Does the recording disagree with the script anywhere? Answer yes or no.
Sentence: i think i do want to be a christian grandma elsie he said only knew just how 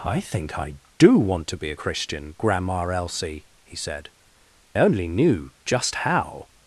no